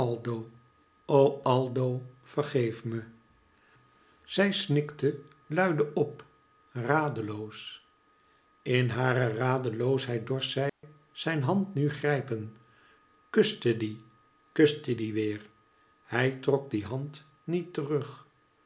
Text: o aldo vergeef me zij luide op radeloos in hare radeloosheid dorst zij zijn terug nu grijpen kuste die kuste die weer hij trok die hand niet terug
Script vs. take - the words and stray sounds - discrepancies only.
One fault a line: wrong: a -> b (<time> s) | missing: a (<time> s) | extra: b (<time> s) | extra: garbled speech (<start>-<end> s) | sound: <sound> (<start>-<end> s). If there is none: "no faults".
extra: snikte (4.5 s)
sound: dropout (10.7-10.8 s)
wrong: terug -> hand (11.4 s)